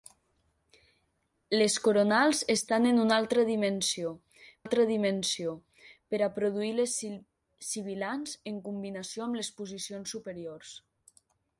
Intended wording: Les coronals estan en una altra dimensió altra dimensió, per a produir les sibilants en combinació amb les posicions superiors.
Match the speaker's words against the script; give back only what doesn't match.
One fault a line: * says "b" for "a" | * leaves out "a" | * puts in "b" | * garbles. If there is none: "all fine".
all fine